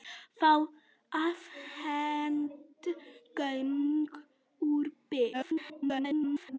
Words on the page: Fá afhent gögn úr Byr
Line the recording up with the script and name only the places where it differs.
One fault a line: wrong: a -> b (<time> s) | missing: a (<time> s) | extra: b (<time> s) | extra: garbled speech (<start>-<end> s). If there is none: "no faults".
extra: garbled speech (5.3-6.6 s)